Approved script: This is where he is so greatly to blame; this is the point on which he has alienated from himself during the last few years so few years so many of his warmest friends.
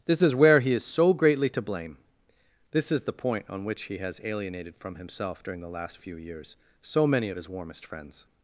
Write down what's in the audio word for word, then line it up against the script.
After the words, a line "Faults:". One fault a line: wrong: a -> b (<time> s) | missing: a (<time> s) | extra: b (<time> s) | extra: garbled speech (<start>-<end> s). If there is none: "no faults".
This is where he is so greatly to blame; this is the point on which he has alienated from himself during the last few years so many of his warmest friends.
Faults:
missing: few years so (7.1 s)